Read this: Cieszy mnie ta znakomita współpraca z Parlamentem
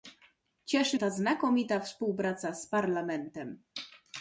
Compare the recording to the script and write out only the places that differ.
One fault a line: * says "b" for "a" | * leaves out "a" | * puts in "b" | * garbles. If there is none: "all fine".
* leaves out "mnie"